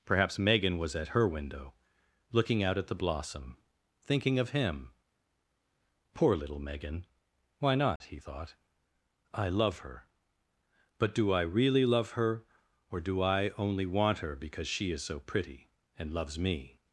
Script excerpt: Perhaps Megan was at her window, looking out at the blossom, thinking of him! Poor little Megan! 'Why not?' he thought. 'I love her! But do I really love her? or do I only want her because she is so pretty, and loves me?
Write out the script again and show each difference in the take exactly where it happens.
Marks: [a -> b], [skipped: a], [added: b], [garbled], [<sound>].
Perhaps Megan was at her window, looking out at the blossom, thinking of him! Poor little Megan! 'Why not?' [dropout] he thought. 'I love her! But do I really love her? or do I only want her because she is so pretty, and loves me?